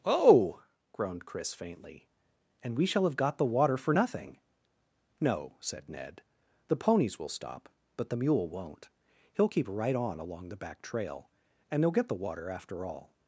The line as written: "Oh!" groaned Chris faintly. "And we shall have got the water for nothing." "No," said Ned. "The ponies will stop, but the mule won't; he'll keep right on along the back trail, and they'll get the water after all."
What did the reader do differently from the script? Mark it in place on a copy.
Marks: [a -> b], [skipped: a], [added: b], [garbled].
"Oh!" groaned Chris faintly. "And we shall have got the water for nothing." "No," said Ned. "The ponies will stop, but the mule won't; he'll keep right on along the back trail, and they'll get the water after all."